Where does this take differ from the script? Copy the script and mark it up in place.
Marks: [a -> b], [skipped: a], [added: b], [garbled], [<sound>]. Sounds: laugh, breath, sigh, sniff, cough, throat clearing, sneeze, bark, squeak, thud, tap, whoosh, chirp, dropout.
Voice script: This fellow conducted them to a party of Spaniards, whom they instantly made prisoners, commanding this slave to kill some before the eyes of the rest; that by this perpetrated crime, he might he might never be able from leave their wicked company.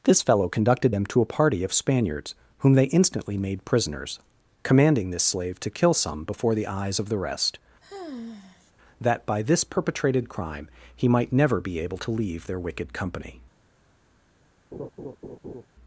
This fellow conducted them to a party of Spaniards, whom they instantly made prisoners, commanding this slave to kill some before the eyes of the rest; [sigh] that by this perpetrated crime, he might [skipped: he might] never be able [from -> to] leave their wicked company. [laugh]